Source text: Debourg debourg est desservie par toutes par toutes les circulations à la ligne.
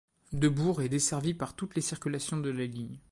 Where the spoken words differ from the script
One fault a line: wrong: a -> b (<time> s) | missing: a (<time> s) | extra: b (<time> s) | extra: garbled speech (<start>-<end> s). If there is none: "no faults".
missing: debourg (0.8 s)
missing: par toutes (1.7 s)
wrong: à -> de (2.4 s)